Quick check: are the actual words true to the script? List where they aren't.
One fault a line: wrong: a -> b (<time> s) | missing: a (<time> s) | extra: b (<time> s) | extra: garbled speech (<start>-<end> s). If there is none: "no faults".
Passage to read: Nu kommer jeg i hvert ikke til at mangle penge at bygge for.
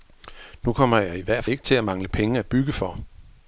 no faults